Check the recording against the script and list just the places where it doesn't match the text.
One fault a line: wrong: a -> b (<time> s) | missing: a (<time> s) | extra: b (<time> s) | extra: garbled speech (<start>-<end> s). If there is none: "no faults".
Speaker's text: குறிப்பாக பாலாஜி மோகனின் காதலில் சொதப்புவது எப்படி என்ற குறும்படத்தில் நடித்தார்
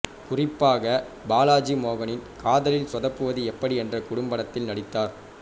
no faults